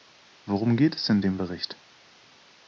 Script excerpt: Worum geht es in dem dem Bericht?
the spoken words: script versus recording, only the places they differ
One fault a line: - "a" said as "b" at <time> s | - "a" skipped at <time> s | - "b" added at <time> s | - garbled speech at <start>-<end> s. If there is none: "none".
- "dem" skipped at 1.4 s